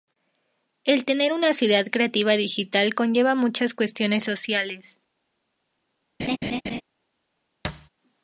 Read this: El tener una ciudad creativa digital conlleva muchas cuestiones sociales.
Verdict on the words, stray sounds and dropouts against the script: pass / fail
fail